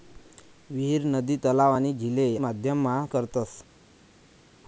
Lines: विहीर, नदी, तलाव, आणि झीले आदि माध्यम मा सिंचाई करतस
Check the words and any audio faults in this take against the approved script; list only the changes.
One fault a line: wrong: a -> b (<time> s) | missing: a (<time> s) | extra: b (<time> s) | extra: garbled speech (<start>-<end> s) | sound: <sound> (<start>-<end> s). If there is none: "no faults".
missing: आदि (2.4 s)
missing: सिंचाई (3.1 s)